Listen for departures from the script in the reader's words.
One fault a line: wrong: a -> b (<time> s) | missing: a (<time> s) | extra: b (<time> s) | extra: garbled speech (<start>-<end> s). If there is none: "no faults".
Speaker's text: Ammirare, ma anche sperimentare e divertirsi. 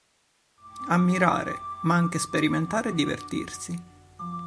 no faults